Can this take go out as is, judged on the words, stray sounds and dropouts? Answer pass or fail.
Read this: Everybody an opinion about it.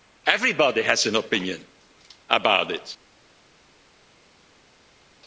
fail